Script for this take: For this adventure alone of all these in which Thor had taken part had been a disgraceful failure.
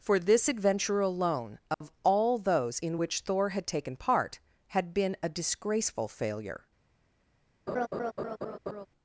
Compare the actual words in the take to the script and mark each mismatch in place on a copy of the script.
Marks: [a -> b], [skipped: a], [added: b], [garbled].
For this adventure alone of all [these -> those] in which Thor had taken part had been a disgraceful failure.